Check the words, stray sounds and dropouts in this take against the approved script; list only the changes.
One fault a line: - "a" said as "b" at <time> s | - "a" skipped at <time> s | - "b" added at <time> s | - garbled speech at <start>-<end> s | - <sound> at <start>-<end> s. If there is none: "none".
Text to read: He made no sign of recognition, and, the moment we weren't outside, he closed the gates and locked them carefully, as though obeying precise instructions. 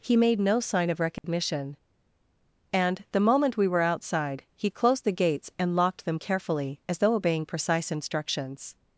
- dropout at 1.2-1.2 s
- "weren't" said as "were" at 3.7 s